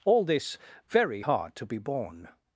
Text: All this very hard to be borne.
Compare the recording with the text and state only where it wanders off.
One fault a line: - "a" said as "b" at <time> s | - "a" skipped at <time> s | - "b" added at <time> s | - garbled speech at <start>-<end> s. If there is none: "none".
none